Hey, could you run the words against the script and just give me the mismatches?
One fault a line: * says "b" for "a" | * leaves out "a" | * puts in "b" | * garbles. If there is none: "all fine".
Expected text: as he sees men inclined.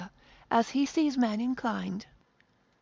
all fine